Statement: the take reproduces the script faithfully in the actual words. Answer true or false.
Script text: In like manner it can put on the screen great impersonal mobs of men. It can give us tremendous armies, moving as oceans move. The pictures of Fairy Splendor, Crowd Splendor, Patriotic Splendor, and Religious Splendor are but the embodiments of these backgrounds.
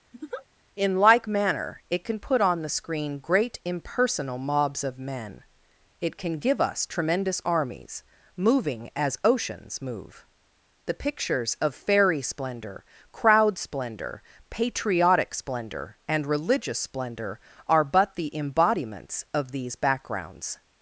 true